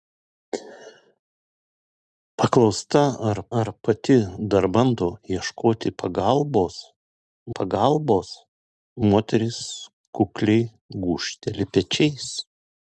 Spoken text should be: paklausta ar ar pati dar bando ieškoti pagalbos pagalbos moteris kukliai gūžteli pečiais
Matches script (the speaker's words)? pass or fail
pass